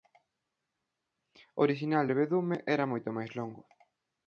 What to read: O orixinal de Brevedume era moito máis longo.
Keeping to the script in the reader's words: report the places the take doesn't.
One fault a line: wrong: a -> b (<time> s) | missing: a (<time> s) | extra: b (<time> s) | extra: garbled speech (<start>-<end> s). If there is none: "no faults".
missing: de (2.0 s)